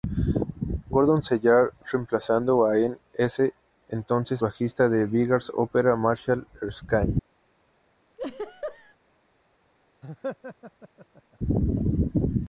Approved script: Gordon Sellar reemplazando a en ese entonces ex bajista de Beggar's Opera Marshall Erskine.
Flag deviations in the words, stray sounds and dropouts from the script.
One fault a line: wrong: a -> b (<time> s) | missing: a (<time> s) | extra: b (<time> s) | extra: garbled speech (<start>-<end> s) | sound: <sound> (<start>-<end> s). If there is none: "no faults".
missing: ex (4.4 s)
sound: laugh (8.2-9.0 s)
sound: laugh (10.0-11.4 s)